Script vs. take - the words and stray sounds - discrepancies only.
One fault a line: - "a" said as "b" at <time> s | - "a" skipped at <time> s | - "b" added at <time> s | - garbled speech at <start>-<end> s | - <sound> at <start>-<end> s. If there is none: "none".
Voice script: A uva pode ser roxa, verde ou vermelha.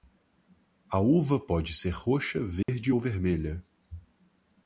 - dropout at 2.6-2.7 s